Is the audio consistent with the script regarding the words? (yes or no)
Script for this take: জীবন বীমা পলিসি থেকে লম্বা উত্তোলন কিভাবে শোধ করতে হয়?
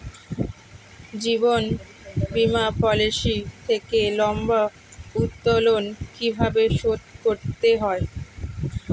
yes